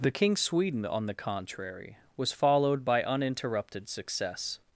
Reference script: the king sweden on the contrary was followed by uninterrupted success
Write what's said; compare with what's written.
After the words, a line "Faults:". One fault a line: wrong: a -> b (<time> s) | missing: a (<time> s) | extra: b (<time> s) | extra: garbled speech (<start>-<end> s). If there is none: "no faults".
the king sweden on the contrary was followed by uninterrupted success
Faults:
no faults